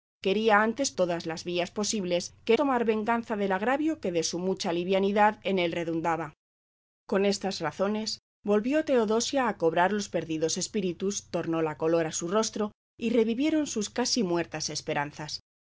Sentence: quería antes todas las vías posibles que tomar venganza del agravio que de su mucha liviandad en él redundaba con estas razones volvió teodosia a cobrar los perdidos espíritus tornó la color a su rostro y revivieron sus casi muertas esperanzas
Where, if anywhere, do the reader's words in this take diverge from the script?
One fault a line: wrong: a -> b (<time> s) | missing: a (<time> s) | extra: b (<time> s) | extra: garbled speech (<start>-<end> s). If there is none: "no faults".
no faults